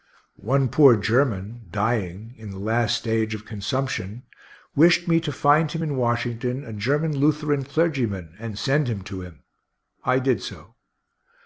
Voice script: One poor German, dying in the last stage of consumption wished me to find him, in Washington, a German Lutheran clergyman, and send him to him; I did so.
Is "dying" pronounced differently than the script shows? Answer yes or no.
no